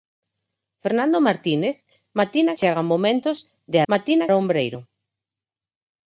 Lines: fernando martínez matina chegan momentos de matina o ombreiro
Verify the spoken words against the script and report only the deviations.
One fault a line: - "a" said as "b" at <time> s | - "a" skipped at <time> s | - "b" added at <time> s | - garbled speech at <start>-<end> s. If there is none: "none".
none